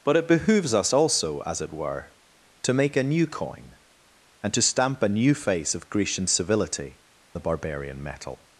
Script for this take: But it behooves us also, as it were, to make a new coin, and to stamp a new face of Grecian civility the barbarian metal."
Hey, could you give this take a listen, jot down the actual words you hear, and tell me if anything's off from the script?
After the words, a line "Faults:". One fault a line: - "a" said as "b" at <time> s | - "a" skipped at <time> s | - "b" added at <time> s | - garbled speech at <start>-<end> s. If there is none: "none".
But it behooves us also, as it were, to make a new coin, and to stamp a new face of Grecian civility the barbarian metal."
Faults:
none